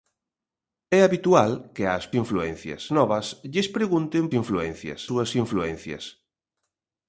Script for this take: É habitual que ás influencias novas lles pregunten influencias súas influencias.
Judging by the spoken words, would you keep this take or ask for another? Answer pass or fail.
pass